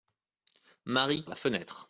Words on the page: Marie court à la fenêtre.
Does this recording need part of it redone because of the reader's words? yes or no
yes